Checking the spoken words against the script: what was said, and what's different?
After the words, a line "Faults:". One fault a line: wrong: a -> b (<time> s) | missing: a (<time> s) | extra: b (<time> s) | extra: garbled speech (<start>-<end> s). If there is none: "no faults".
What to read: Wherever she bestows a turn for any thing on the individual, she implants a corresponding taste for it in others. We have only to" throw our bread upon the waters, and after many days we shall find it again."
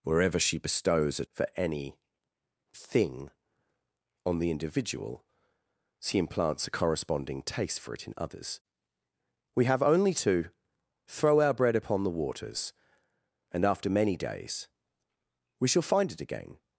Wherever she bestows a for any thing on the individual, she implants a corresponding taste for it in others. We have only to" throw our bread upon the waters, and after many days we shall find it again."
Faults:
missing: turn (1.2 s)